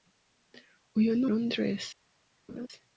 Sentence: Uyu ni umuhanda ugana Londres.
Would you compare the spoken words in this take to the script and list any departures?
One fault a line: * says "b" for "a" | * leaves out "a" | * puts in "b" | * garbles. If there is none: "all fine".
* leaves out "umuhanda ugana"